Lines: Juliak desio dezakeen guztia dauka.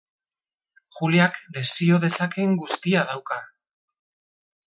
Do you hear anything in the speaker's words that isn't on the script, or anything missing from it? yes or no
no